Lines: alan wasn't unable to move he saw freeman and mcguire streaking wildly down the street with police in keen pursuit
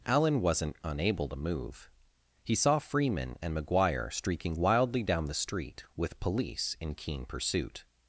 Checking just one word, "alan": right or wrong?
right